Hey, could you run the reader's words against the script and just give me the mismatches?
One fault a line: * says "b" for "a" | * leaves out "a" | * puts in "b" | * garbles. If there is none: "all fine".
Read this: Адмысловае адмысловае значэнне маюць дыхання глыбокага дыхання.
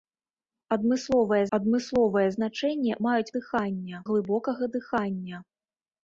all fine